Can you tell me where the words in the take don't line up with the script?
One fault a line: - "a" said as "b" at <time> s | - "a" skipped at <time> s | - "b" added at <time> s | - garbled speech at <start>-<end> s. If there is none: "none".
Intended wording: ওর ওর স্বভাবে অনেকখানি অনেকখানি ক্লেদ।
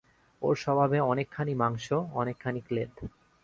- "ওর" skipped at 0.6 s
- "মাংস" added at 1.5 s